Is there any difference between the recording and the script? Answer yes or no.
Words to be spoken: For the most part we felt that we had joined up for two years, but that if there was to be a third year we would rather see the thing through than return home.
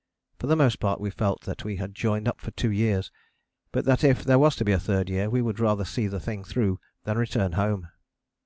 no